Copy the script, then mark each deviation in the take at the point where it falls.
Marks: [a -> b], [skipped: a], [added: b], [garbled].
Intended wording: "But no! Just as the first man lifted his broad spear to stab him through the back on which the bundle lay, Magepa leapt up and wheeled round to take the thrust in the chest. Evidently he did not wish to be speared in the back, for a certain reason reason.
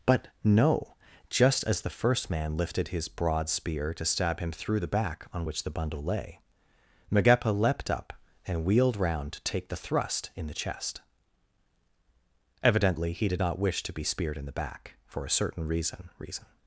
"But no! Just as the first man lifted his broad spear to stab him through the back on which the bundle lay, Magepa leapt up and wheeled round to take the thrust in the chest. Evidently he did not wish to be speared in the back, for a certain reason reason.